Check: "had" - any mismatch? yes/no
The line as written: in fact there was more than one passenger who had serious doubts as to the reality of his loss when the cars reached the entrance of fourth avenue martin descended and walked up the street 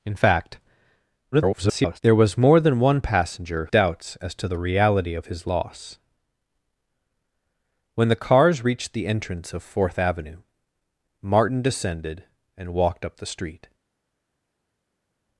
yes